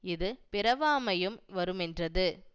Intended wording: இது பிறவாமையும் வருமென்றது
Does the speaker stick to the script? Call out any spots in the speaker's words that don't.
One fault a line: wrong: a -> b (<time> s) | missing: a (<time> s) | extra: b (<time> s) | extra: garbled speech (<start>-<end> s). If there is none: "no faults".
no faults